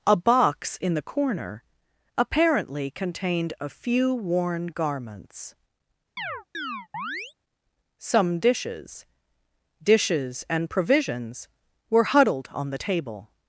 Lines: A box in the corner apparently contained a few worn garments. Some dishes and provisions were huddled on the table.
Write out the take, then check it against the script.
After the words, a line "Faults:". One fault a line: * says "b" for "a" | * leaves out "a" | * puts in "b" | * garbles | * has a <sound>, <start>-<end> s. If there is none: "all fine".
A box in the corner apparently contained a few worn garments. Some dishes dishes and provisions were huddled on the table.
Faults:
* has a chirp, 6.2-7.3 s
* puts in "dishes"